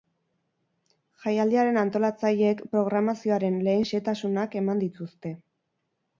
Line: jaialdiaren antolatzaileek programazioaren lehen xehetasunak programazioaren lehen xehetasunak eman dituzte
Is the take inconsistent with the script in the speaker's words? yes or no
yes